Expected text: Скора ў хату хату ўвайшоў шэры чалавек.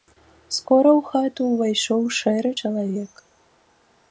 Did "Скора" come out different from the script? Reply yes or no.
no